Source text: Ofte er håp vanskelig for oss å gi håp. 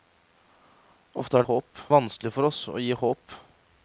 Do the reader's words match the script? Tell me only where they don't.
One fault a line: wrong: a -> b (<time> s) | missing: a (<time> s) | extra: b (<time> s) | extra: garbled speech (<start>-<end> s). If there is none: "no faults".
no faults